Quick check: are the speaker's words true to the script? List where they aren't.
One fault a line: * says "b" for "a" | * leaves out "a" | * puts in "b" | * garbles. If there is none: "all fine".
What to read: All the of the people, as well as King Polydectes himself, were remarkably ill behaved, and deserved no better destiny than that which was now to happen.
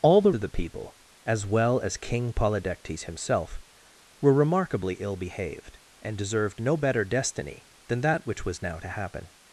all fine